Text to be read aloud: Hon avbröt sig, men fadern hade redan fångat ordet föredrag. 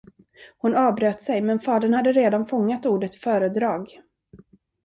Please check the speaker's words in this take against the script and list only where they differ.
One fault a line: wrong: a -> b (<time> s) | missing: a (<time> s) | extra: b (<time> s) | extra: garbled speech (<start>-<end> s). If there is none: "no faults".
no faults